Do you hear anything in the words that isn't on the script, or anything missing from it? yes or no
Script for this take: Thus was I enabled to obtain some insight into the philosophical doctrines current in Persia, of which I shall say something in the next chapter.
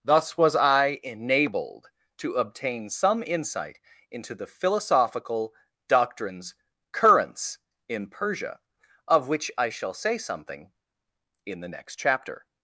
yes